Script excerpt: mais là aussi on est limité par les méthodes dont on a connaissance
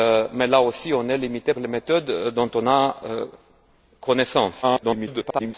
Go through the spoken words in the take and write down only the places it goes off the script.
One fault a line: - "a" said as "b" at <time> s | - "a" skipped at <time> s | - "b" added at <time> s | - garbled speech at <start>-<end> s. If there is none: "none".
- "par" skipped at 1.5 s
- garbled speech at 4.6-5.5 s